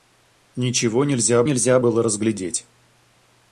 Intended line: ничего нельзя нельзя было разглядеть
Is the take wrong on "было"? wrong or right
right